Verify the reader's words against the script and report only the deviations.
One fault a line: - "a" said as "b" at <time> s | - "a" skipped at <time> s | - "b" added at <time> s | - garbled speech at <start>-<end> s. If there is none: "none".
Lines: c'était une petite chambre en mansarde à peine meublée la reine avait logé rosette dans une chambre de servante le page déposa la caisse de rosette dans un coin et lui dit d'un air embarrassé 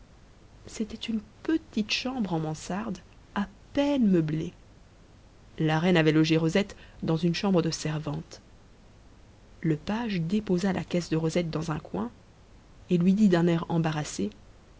none